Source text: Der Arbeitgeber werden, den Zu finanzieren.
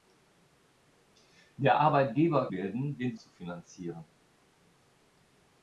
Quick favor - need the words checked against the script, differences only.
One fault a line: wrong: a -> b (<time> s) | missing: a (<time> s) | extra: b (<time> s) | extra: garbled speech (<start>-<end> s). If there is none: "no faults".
no faults